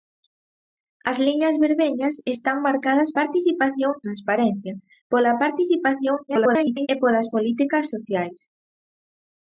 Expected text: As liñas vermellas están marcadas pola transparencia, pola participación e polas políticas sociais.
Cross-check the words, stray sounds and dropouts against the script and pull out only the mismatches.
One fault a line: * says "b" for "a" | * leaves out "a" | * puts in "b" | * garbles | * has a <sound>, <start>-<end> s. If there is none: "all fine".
* says "participación" for "pola"
* garbles